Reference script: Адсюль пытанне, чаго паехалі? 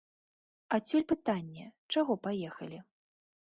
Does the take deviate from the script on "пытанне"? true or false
false